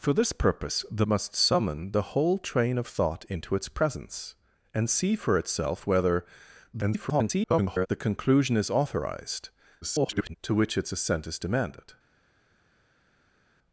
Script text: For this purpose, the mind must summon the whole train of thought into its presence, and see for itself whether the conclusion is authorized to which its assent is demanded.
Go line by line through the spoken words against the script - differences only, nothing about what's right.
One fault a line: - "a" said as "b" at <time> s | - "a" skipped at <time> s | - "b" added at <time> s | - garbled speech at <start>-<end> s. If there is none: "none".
- "mind" skipped at 1.1 s
- garbled speech at 6.7-7.9 s
- garbled speech at 9.8-10.4 s